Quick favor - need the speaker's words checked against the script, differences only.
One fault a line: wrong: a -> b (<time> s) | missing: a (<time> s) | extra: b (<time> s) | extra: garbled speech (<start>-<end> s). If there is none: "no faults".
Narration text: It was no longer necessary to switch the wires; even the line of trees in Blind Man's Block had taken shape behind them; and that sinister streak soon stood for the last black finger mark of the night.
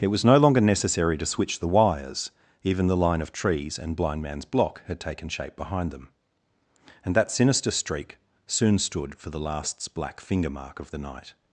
wrong: in -> and (3.8 s)
wrong: last -> lasts (9.4 s)